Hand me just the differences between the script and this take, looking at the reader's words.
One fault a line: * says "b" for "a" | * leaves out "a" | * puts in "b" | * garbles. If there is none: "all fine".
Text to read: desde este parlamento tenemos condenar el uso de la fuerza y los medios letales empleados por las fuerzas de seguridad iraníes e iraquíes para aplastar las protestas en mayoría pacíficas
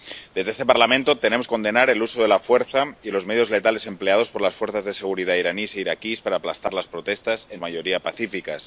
all fine